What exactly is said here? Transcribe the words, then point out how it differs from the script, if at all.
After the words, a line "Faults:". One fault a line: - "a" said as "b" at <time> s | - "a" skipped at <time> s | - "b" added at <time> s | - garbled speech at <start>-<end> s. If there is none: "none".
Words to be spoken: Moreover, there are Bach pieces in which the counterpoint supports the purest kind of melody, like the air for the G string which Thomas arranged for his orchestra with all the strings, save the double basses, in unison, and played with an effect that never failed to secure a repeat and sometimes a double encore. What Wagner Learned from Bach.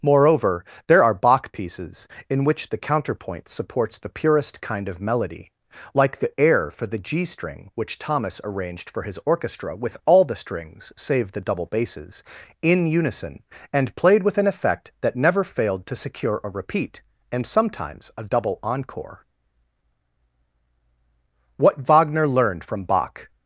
Moreover, there are Bach pieces in which the counterpoint supports the purest kind of melody, like the air for the G string which Thomas arranged for his orchestra with all the strings, save the double basses, in unison, and played with an effect that never failed to secure a repeat and sometimes a double encore. What Wagner Learned from Bach.
Faults:
none